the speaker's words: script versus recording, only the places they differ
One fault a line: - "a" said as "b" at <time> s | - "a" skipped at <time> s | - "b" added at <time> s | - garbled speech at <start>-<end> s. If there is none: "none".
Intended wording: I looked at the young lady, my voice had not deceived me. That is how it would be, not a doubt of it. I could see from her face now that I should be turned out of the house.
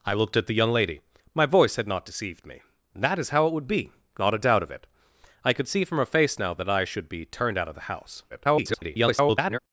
- garbled speech at 8.3-9.6 s